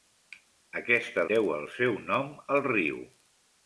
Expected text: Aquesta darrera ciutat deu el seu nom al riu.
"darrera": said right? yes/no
no